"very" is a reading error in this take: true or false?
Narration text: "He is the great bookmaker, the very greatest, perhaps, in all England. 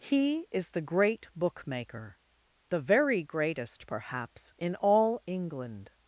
false